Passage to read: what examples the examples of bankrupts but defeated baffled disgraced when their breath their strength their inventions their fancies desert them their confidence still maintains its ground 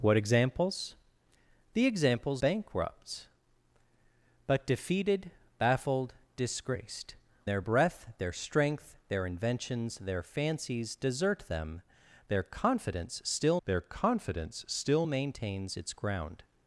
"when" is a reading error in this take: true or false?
true